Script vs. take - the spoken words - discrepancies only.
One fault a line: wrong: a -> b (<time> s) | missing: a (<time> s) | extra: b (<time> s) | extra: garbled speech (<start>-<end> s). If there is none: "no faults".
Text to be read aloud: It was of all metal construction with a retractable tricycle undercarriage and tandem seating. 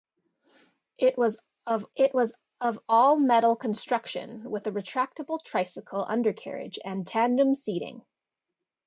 extra: it was of (1.9 s)